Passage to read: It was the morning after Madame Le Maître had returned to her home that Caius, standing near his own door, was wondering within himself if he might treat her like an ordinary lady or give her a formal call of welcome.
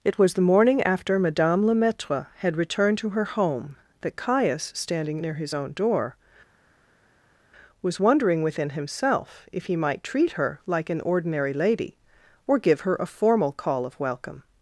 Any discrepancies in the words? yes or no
no